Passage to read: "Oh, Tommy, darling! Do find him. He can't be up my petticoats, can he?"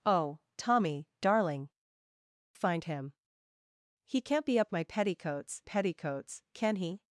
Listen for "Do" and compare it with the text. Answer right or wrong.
wrong